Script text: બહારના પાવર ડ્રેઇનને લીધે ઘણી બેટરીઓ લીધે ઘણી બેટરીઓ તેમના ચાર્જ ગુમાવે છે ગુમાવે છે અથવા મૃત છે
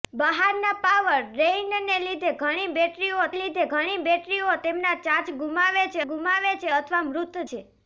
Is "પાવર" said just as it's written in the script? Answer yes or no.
yes